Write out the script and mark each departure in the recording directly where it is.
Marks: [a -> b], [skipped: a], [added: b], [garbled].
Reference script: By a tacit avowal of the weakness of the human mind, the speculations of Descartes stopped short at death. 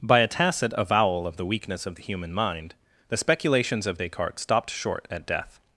By a tacit avowal of the weakness of the human mind, the speculations of Descartes stopped short at death.